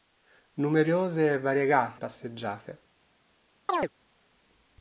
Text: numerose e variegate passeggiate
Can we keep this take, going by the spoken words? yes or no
yes